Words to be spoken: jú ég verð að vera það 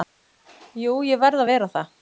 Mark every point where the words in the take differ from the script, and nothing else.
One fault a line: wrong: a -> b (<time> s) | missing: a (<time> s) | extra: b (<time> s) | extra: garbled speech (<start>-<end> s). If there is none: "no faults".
no faults